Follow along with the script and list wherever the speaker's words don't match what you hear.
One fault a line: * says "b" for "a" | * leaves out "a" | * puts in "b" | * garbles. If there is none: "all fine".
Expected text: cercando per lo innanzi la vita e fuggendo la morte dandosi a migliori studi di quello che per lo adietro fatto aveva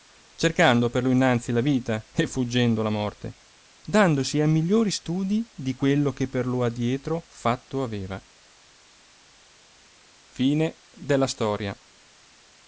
all fine